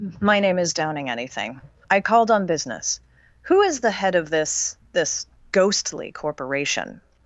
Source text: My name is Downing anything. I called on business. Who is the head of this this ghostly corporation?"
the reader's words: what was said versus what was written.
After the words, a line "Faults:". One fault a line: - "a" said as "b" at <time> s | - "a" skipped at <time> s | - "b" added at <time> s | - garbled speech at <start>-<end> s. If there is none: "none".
My name is Downing anything. I called on business. Who is the head of this this ghostly corporation?"
Faults:
none